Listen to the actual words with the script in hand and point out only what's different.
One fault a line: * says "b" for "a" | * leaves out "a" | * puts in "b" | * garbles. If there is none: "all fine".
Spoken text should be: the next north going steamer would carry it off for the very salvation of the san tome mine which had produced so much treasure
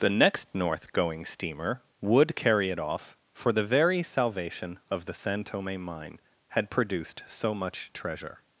* leaves out "which"